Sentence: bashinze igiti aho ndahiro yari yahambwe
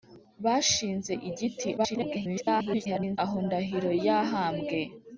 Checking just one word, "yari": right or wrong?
wrong